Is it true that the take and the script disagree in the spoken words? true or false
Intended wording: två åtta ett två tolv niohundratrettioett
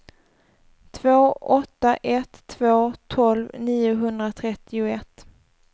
false